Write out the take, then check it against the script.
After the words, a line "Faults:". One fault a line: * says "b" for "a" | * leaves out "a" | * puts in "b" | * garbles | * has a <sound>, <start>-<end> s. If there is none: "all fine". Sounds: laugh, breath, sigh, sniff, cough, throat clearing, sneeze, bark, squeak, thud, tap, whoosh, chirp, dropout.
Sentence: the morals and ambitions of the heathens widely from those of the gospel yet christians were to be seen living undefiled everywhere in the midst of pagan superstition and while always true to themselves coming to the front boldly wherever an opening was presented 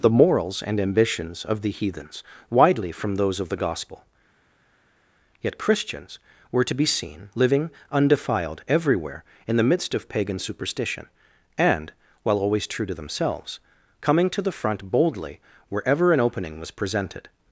the morals and ambitions of the heathens widely from those of the gospel yet christians were to be seen living undefiled everywhere in the midst of pagan superstition and while always true to themselves coming to the front boldly wherever an opening was presented
Faults:
all fine